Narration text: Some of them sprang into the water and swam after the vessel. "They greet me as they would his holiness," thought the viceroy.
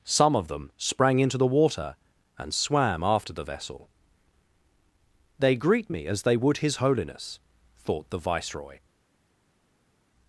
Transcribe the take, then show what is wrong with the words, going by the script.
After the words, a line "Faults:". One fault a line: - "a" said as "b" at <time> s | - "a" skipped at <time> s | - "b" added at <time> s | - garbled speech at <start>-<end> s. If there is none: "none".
Some of them sprang into the water and swam after the vessel. "They greet me as they would his holiness," thought the viceroy.
Faults:
none